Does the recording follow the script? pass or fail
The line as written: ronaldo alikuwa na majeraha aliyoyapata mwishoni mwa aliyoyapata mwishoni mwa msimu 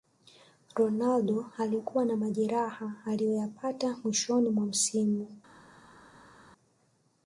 fail